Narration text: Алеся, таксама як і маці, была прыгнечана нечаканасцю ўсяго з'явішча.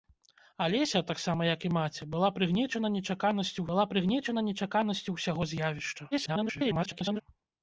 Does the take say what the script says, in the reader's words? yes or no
no